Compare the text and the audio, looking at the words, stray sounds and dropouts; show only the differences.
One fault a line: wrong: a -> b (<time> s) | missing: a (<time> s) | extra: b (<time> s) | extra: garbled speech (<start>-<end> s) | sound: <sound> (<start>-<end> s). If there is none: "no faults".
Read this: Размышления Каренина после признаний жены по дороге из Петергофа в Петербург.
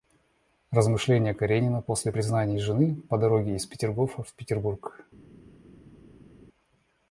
no faults